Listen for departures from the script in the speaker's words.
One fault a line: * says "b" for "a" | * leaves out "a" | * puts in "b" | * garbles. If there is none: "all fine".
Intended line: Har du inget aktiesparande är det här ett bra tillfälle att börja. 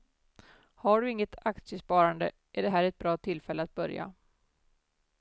all fine